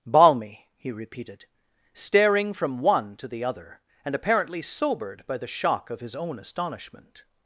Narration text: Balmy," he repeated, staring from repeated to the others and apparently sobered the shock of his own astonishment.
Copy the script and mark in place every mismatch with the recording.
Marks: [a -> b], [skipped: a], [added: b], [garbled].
Balmy," he repeated, staring from [repeated -> one] to the [others -> other] and apparently sobered [added: by] the shock of his own astonishment.